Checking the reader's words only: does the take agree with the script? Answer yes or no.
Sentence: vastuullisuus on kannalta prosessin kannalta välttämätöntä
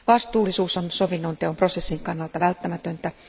no